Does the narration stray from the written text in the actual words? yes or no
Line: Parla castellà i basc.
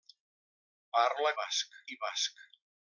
yes